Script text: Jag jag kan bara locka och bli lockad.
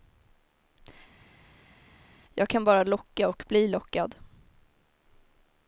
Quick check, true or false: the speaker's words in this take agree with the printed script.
false